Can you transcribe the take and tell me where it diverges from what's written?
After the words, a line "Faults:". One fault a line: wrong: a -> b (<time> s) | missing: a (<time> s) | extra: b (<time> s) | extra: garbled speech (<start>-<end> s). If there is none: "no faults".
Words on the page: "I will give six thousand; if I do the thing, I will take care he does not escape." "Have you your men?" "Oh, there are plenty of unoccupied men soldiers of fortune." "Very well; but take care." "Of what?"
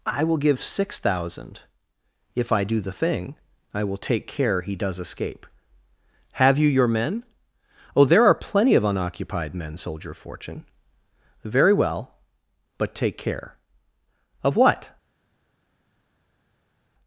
"I will give six thousand; if I do the thing, I will take care he does escape." "Have you your men?" "Oh, there are plenty of unoccupied men soldier of fortune." "Very well; but take care." "Of what?"
Faults:
missing: not (5.0 s)
wrong: soldiers -> soldier (9.8 s)